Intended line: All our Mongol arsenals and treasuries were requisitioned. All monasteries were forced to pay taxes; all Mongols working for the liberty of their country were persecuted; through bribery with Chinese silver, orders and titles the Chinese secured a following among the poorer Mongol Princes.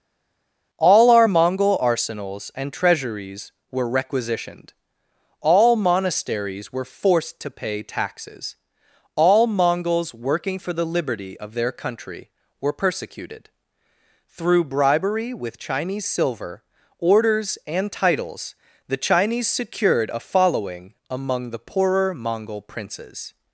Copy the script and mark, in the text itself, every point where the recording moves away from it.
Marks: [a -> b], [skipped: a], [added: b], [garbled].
All our Mongol arsenals and treasuries were requisitioned. All monasteries were forced to pay taxes; all Mongols working for the liberty of their country were persecuted; through bribery with Chinese silver, orders and titles the Chinese secured a following among the poorer Mongol Princes.